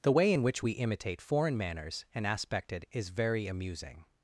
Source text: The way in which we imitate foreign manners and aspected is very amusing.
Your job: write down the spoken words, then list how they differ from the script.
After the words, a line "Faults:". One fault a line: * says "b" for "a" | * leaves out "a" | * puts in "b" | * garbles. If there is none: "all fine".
The way in which we imitate foreign manners and aspected is very amusing.
Faults:
all fine